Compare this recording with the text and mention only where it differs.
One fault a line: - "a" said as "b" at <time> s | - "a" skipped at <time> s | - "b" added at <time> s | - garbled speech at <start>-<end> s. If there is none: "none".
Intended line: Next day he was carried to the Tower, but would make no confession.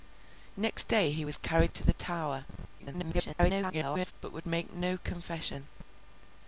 - garbled speech at 2.8-4.1 s